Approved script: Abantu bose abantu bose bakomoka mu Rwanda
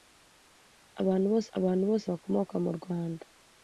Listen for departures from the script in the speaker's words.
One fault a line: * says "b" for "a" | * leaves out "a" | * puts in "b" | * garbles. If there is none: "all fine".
all fine